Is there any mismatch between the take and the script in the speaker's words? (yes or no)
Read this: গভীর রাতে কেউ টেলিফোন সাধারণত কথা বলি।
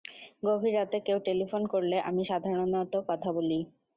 yes